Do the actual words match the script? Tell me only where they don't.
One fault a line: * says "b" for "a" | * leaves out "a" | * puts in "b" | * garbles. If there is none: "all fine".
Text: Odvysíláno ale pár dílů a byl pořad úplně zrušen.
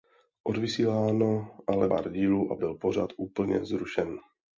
all fine